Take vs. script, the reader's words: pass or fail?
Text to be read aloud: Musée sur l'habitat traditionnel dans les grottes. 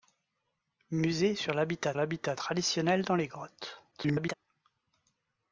fail